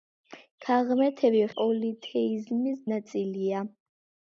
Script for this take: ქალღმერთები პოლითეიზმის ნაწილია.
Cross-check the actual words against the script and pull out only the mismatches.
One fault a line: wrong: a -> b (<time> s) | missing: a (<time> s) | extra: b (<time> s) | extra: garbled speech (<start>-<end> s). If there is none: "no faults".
no faults